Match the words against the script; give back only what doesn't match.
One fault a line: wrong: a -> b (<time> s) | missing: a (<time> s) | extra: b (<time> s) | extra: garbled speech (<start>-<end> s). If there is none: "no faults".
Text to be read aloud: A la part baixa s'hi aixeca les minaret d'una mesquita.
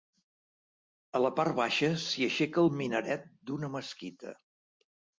wrong: les -> el (2.6 s)